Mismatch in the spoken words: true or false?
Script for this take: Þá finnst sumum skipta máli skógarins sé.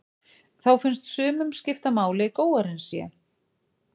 false